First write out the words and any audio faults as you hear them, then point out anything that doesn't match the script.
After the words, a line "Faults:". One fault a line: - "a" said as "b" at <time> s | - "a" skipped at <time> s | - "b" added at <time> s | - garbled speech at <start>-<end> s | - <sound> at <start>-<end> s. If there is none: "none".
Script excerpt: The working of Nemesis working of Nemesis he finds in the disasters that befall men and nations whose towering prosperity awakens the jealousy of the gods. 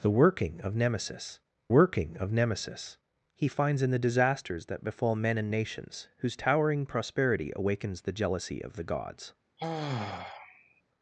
The working of Nemesis working of Nemesis he finds in the disasters that befall men and nations whose towering prosperity awakens the jealousy of the gods.
Faults:
- sigh at 9.6-10.8 s